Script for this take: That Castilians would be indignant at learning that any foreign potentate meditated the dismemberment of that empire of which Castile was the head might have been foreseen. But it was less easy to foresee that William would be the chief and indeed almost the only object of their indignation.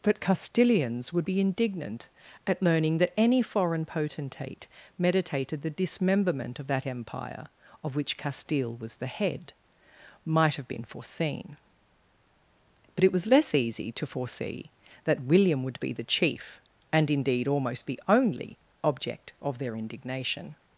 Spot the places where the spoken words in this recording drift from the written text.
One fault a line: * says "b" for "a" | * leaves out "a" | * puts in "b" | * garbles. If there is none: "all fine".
* says "But" for "That"